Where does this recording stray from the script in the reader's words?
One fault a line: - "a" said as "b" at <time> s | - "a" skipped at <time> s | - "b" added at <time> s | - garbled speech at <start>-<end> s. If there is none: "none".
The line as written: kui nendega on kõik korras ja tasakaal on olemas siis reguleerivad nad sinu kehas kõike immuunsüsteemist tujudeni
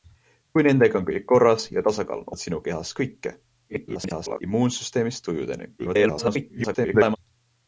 - "olemas siis reguleerivad" skipped at 2.3 s
- garbled speech at 3.7-4.4 s
- garbled speech at 5.8-7.2 s